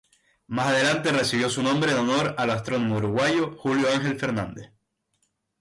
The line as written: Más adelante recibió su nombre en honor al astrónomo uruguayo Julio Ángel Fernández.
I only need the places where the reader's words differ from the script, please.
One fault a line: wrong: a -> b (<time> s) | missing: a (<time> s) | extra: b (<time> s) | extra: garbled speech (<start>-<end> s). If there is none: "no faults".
no faults